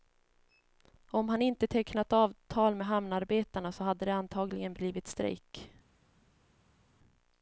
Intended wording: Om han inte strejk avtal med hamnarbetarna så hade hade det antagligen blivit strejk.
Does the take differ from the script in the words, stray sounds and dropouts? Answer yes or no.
yes